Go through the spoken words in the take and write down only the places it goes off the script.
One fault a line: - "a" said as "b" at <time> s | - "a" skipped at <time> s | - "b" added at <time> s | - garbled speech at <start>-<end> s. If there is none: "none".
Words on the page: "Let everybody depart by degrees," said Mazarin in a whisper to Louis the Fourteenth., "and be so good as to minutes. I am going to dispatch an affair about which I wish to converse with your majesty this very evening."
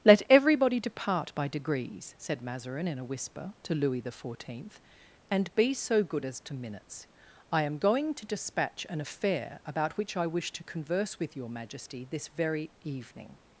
none